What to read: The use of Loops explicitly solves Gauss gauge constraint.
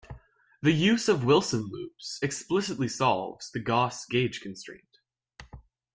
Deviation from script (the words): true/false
true